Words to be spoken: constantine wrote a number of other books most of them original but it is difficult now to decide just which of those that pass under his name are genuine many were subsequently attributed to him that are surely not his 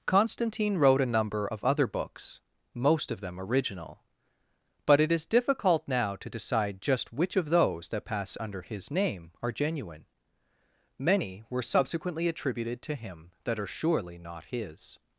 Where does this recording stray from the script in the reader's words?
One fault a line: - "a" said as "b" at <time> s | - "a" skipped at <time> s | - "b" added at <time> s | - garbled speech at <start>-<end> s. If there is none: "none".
none